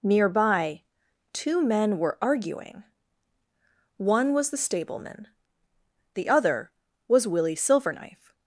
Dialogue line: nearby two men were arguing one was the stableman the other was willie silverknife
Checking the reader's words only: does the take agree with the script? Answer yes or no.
yes